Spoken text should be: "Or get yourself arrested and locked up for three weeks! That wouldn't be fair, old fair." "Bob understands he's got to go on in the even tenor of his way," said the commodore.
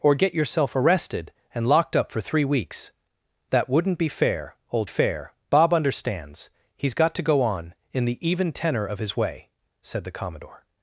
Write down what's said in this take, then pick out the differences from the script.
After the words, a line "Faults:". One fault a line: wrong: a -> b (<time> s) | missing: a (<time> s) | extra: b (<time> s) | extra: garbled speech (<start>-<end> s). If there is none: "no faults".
"Or get yourself arrested and locked up for three weeks! That wouldn't be fair, old fair." "Bob understands he's got to go on in the even tenor of his way," said the commodore.
Faults:
no faults